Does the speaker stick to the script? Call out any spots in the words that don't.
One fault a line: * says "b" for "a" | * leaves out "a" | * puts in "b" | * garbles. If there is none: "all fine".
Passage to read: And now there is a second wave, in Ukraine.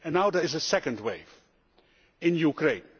all fine